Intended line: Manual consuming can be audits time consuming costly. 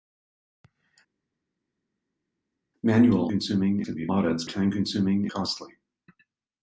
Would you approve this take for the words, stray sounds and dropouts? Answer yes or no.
yes